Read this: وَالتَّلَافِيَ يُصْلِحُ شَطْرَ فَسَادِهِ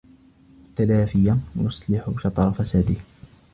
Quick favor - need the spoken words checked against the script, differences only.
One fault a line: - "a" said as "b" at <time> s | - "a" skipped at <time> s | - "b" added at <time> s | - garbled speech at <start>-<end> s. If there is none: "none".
none